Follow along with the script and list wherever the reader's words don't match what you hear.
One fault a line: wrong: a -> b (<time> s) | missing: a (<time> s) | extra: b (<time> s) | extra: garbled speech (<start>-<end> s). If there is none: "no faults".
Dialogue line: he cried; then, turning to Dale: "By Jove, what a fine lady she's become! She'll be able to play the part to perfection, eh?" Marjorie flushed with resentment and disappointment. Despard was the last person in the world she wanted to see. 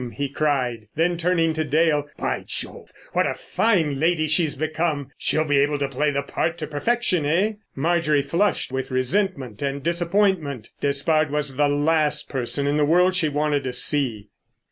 no faults